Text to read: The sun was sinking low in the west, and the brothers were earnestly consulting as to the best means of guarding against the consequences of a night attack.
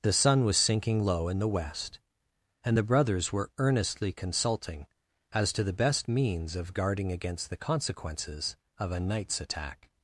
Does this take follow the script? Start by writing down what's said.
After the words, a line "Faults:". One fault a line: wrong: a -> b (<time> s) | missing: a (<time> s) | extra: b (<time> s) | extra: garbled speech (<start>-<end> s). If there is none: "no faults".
The sun was sinking low in the west, and the brothers were earnestly consulting as to the best means of guarding against the consequences of a nights attack.
Faults:
wrong: night -> nights (9.0 s)